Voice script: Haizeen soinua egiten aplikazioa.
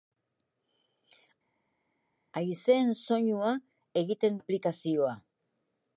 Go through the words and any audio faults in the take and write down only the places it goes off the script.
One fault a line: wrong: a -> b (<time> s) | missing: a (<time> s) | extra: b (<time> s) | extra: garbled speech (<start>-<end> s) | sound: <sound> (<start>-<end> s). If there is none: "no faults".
no faults